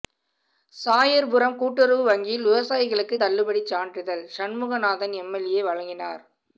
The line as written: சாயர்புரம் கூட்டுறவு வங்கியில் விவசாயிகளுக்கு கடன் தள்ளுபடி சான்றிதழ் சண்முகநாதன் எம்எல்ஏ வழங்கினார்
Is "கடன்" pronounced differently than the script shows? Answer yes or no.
yes